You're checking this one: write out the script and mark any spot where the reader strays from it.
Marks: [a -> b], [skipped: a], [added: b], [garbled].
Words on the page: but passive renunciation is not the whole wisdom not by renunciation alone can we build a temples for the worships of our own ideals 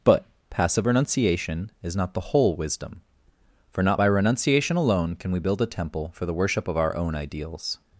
but passive renunciation is not the whole wisdom [added: for] not by renunciation alone can we build a [temples -> temple] for the [worships -> worship] of our own ideals